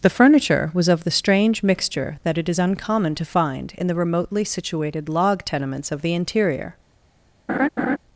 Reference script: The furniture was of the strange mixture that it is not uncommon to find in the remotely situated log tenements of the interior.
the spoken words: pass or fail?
fail